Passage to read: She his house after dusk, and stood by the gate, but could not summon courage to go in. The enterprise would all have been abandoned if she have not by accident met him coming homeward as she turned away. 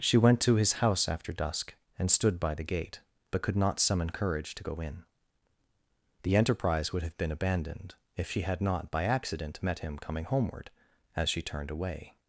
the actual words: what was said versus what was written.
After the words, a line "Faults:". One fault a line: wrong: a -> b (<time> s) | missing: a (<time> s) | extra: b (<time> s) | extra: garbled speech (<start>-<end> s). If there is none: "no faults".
She went to his house after dusk, and stood by the gate, but could not summon courage to go in. The enterprise would have been abandoned if she had not by accident met him coming homeward as she turned away.
Faults:
extra: went to (0.2 s)
missing: all (7.0 s)
wrong: have -> had (8.4 s)